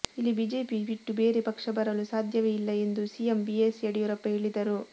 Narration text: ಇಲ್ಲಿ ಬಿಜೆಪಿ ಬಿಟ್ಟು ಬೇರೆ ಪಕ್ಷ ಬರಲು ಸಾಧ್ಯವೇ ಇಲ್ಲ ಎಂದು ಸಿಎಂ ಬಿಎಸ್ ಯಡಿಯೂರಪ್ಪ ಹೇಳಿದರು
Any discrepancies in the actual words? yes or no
no